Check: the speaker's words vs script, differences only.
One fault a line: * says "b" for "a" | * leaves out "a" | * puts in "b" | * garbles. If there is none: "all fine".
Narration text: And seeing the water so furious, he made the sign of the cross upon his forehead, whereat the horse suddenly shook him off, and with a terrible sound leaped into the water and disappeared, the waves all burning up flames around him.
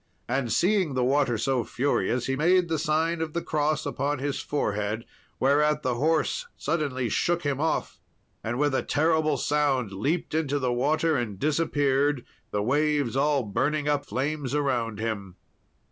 all fine